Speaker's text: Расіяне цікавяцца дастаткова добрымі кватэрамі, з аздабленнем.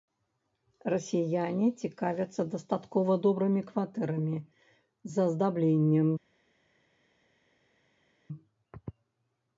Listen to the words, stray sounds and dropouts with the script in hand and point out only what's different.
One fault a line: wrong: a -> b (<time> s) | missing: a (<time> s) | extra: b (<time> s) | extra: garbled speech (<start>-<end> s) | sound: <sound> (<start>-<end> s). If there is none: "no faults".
no faults